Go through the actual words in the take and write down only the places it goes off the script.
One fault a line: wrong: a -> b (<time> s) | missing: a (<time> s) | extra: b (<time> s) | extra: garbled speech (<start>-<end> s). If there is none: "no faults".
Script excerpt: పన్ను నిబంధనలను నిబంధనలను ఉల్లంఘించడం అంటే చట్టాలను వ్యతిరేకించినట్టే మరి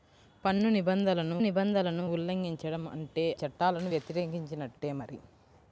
no faults